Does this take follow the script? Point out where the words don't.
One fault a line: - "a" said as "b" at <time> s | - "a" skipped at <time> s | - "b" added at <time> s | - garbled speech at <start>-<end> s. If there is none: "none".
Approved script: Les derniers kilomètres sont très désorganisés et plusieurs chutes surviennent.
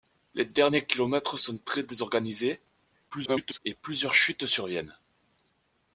- garbled speech at 3.1-3.6 s